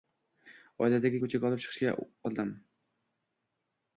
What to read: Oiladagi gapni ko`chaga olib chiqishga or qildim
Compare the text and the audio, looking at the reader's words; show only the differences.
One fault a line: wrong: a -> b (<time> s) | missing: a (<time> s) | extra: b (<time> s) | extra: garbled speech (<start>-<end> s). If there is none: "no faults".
missing: gapni (1.2 s)
missing: or (1.9 s)